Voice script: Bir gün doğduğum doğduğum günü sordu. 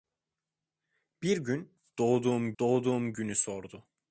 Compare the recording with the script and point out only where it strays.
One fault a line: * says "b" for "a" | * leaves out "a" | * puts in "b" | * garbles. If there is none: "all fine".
all fine